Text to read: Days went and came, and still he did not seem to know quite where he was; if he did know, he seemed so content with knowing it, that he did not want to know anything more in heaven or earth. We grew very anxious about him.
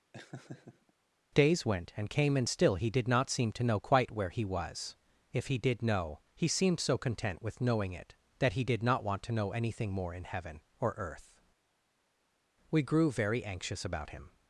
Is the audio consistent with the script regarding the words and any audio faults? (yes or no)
no